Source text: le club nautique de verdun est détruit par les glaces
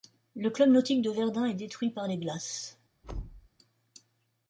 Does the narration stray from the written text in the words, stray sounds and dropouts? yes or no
yes